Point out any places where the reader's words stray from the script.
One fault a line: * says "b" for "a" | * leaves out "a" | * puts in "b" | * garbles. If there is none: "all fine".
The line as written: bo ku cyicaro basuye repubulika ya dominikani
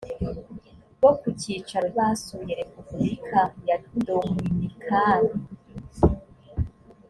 all fine